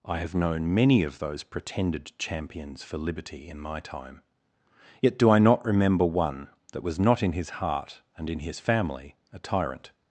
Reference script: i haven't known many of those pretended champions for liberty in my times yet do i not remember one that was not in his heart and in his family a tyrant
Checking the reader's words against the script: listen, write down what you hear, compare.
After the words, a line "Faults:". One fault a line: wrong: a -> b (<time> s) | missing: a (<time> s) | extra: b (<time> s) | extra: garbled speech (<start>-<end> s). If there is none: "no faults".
i have known many of those pretended champions for liberty in my time yet do i not remember one that was not in his heart and in his family a tyrant
Faults:
wrong: haven't -> have (0.2 s)
wrong: times -> time (3.8 s)